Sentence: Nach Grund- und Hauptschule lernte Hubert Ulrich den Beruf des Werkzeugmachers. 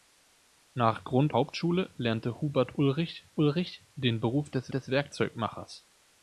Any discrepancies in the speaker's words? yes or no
yes